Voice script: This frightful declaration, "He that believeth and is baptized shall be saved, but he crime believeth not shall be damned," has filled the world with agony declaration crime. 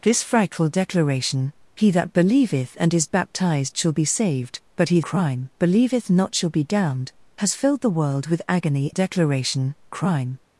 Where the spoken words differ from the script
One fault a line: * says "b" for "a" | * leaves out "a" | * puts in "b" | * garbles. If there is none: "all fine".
all fine